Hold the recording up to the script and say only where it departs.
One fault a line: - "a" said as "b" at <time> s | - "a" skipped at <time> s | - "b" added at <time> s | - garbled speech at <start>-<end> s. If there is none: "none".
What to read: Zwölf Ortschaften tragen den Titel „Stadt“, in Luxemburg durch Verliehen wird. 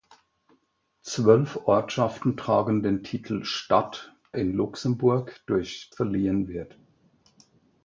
none